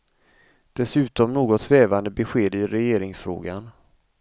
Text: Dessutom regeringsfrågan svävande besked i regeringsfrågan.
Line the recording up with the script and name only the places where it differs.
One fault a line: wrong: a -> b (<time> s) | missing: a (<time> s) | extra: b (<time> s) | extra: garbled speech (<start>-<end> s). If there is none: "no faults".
wrong: regeringsfrågan -> något (1.3 s)